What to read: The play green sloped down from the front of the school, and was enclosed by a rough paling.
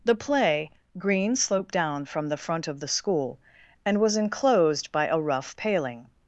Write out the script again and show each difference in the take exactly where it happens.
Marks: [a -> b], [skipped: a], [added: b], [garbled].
The play green sloped down from the front of the school, and was enclosed by a rough paling.